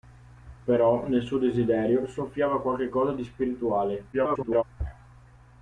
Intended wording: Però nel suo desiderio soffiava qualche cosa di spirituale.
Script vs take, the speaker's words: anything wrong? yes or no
yes